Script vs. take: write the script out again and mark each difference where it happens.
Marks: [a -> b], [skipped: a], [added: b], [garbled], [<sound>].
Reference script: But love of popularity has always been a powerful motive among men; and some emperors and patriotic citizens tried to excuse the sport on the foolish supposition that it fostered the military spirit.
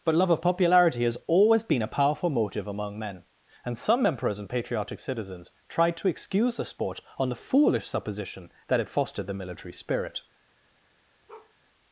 But love of popularity has always been a powerful motive among men; and some emperors and patriotic citizens tried to excuse the sport on the foolish supposition that it fostered the military spirit. [bark]